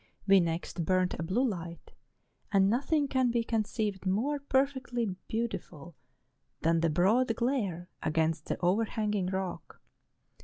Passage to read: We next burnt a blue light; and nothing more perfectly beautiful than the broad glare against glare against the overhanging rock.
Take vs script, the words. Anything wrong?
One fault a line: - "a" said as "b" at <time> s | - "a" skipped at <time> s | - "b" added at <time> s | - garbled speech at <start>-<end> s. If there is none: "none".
- "can be conceived" added at 3.1 s
- "glare against" skipped at 8.5 s